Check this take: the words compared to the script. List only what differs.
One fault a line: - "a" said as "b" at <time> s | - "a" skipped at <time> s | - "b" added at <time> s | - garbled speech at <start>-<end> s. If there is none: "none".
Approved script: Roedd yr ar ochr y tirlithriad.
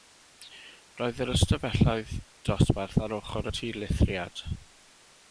- "ystafelloedd dosbarth" added at 1.3 s